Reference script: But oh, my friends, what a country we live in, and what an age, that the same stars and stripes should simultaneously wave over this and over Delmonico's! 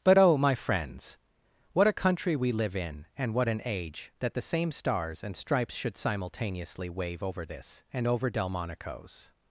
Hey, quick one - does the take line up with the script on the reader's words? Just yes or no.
yes